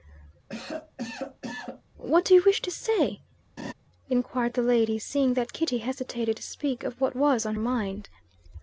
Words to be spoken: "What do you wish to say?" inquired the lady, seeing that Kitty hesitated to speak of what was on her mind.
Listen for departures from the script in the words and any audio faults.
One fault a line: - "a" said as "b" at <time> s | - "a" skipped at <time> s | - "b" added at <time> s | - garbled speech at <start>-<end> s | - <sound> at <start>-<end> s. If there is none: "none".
- cough at 0.5-1.8 s
- laugh at 3.6-3.7 s
- "her" skipped at 7.6 s